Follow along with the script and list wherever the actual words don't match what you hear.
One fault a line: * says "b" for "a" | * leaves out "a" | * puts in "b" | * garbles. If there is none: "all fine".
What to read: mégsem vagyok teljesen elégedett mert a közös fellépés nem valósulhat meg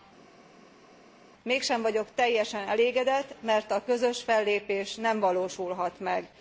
all fine